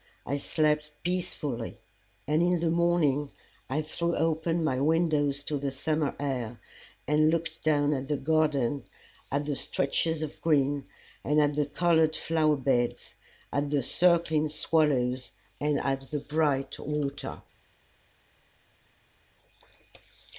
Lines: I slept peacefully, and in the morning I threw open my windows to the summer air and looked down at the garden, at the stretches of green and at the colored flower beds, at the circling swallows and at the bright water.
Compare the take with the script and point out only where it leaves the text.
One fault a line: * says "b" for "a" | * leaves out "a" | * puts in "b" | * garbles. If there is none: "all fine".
all fine